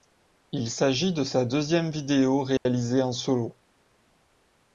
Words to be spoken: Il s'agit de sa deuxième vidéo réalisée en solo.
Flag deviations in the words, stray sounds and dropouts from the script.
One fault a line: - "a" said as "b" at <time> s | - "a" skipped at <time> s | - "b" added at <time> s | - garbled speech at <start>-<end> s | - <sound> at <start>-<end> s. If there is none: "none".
- dropout at 2.6-2.7 s